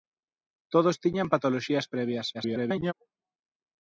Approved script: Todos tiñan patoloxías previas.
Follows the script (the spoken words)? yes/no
no